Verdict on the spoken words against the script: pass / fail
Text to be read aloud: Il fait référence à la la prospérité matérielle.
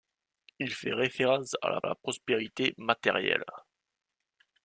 pass